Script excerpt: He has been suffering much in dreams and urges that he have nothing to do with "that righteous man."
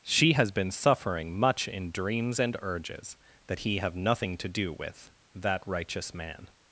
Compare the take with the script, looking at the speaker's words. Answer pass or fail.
fail